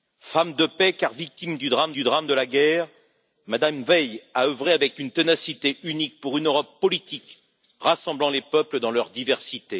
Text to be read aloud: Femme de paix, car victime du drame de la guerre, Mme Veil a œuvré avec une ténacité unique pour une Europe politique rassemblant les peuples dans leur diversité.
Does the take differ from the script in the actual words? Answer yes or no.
yes